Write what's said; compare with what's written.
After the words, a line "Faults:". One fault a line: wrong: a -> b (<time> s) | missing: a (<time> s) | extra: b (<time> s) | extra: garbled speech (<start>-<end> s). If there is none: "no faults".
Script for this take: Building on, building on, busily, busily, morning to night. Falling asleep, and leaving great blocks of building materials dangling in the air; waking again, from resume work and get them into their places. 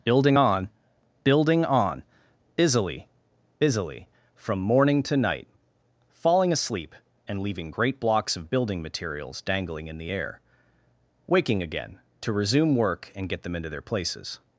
Building on, building on, busily, busily, from morning to night. Falling asleep, and leaving great blocks of building materials dangling in the air; waking again, to resume work and get them into their places.
Faults:
extra: from (4.3 s)
wrong: from -> to (12.2 s)